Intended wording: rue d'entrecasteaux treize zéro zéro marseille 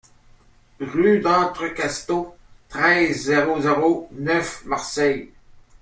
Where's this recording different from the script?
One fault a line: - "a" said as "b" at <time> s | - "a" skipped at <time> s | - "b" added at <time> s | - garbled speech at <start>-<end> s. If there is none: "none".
- "neuf" added at 4.1 s